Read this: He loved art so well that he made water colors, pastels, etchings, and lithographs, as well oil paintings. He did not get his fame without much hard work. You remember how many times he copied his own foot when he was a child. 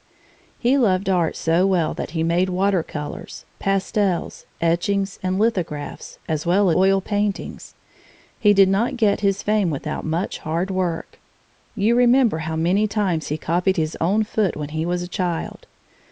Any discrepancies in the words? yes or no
no